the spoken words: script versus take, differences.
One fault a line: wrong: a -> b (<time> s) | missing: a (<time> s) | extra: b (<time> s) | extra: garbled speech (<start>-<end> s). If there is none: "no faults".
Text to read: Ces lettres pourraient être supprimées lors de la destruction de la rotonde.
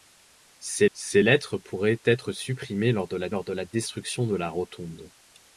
extra: ces (0.9 s)
extra: lors de la (3.3 s)